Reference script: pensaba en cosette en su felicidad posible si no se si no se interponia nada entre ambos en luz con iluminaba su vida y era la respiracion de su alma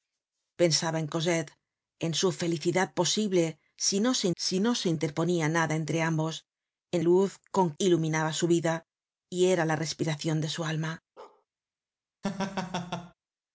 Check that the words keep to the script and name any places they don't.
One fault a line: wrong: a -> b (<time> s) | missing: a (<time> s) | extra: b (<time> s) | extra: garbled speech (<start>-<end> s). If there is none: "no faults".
no faults